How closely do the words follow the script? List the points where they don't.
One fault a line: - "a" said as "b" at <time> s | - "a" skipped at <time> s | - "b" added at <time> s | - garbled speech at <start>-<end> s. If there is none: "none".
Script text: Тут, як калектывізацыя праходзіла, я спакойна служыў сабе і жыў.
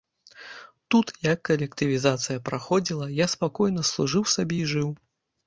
none